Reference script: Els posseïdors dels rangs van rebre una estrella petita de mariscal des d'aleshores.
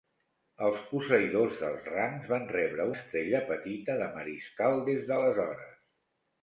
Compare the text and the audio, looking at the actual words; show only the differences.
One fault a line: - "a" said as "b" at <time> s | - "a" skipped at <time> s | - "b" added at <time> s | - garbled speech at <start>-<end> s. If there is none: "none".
- "una" skipped at 2.9 s